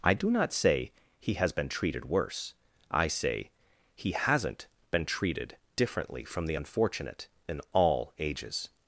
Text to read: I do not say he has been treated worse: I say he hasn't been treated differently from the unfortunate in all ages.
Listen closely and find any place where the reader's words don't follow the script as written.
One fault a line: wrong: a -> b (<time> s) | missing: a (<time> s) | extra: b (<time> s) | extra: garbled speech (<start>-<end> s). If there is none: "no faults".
no faults